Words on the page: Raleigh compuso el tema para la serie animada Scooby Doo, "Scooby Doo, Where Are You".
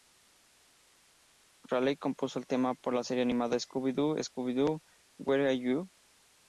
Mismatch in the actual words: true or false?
false